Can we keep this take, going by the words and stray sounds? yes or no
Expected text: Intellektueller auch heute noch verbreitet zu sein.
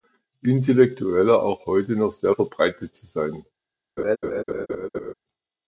no